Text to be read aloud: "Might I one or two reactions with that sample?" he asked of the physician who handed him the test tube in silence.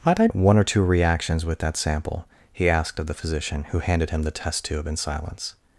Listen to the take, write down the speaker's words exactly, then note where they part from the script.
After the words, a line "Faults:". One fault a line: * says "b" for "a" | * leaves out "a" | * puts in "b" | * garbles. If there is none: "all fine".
"Might I one or two reactions with that sample?" he asked of the physician who handed him the test tube in silence.
Faults:
all fine